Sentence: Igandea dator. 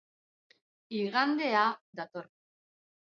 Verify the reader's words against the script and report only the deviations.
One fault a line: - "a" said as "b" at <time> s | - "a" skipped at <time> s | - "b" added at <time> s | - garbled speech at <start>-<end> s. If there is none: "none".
none